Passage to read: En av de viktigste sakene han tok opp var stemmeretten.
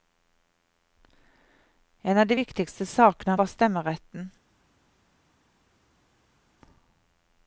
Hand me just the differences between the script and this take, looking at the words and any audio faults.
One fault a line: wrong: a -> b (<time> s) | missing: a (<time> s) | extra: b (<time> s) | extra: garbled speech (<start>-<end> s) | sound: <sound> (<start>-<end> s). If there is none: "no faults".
missing: han tok opp (3.3 s)